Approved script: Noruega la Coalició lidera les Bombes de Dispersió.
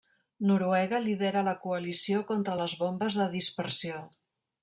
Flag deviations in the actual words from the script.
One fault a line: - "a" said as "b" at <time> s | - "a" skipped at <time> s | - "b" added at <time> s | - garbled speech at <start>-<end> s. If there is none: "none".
- "lidera" added at 1.0 s
- "lidera" said as "contra" at 2.3 s